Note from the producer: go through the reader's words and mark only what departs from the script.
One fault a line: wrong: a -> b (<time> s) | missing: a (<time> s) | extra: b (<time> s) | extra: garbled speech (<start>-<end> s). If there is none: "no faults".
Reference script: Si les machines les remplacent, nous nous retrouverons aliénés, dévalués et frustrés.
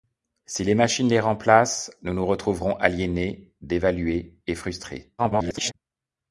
extra: garbled speech (5.2-5.7 s)